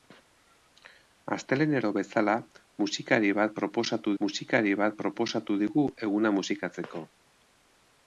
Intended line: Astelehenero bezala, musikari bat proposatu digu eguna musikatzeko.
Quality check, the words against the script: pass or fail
fail